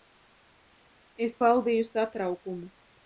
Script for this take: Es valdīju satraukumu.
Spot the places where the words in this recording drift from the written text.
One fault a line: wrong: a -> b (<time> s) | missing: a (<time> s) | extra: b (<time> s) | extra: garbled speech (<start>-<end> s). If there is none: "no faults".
no faults